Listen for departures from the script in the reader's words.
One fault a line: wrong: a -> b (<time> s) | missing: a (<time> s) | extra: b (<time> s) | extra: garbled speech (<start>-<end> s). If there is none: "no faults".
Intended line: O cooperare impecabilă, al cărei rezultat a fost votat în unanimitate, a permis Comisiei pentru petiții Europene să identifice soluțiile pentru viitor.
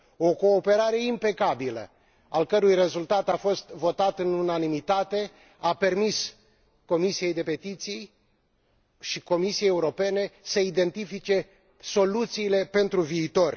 extra: și Comisiei (9.0 s)